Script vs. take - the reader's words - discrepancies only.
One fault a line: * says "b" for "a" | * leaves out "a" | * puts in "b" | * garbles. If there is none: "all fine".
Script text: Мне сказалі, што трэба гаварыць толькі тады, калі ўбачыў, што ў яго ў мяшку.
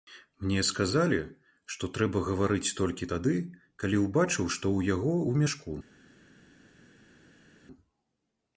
all fine